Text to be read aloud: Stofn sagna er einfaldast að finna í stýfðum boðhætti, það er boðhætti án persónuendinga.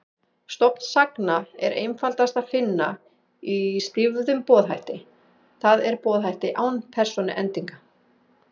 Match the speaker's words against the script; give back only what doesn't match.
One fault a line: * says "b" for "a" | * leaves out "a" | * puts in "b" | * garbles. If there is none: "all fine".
all fine